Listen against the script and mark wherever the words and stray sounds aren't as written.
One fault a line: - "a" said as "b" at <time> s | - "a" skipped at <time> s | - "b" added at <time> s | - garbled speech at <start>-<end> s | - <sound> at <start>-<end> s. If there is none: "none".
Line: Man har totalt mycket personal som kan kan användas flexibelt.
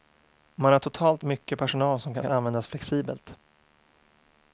none